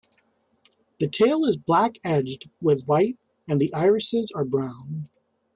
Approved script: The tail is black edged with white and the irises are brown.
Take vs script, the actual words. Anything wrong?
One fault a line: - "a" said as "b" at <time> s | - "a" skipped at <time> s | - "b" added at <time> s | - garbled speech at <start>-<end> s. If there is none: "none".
none